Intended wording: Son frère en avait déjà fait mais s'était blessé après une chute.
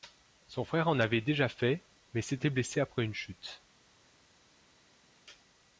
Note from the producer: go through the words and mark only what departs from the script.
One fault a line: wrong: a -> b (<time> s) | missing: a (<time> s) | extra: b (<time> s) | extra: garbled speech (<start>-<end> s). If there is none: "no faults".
no faults